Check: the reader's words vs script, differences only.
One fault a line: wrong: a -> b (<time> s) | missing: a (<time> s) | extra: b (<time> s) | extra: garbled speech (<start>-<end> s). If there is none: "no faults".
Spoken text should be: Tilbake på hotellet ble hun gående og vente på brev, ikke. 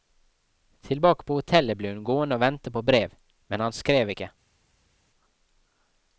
extra: men han skrev (3.5 s)